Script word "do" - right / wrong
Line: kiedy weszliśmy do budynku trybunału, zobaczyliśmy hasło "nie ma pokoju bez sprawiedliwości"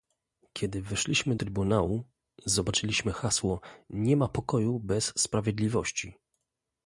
wrong